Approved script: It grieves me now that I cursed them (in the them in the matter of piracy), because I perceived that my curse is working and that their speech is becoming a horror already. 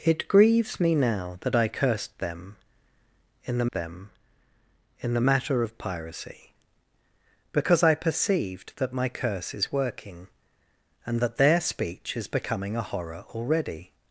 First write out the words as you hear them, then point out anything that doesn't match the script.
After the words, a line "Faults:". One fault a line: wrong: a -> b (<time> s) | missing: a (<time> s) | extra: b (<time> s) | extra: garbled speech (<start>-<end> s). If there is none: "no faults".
It grieves me now that I cursed them (in the them in the matter of piracy), because I perceived that my curse is working and that their speech is becoming a horror already.
Faults:
no faults